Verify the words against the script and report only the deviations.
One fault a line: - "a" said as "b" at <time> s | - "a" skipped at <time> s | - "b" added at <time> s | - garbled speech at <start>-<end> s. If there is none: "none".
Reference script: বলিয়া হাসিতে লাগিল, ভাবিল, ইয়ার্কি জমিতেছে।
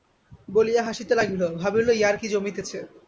none